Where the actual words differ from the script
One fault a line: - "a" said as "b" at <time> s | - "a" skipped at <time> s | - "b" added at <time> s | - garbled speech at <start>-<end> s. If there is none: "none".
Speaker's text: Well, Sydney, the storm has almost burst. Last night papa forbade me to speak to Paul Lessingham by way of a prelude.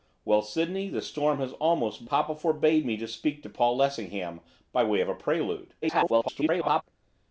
- "burst Last night" skipped at 2.1 s
- garbled speech at 5.8-6.8 s